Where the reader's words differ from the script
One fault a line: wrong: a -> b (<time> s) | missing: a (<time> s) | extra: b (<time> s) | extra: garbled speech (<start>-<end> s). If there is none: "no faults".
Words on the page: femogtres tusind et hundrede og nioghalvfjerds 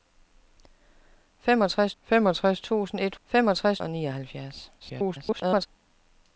extra: femogtres (2.0 s)
wrong: hundrede -> femogtres (3.3 s)
extra: garbled speech (4.8-5.7 s)